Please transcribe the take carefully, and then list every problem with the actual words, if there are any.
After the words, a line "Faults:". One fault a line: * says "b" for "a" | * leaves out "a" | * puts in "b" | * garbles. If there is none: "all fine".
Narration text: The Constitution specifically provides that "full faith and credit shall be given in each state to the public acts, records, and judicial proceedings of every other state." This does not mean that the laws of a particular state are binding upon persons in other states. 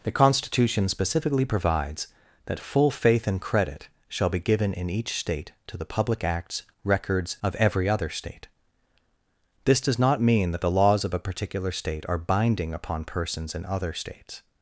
The Constitution specifically provides that "full faith and credit shall be given in each state to the public acts, records, of every other state." This does not mean that the laws of a particular state are binding upon persons in other states.
Faults:
* leaves out "and judicial proceedings"